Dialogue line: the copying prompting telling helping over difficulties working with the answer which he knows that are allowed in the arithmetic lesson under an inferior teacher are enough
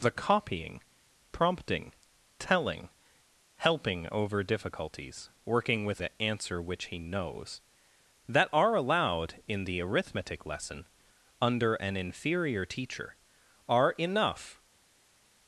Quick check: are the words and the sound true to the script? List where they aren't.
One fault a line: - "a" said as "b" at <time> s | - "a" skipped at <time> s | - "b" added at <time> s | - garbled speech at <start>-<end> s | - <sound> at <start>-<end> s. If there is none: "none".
none